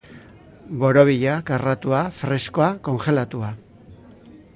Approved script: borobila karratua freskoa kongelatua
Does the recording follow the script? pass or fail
pass